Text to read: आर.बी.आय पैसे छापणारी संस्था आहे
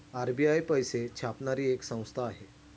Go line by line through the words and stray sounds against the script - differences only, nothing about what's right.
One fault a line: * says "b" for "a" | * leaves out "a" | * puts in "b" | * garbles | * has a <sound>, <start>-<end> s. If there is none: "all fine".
* puts in "एक"